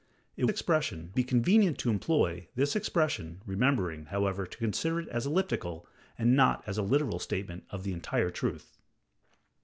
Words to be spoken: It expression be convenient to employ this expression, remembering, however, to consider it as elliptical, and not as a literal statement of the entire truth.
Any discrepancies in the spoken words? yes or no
no